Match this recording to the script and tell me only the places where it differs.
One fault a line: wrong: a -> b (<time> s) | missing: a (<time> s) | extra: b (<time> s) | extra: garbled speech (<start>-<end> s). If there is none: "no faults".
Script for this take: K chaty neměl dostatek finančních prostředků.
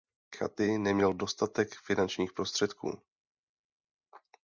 no faults